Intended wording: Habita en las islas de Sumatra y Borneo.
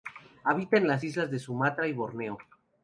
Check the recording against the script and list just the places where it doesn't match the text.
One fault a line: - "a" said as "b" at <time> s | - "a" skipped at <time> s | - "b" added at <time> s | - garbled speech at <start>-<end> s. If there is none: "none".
none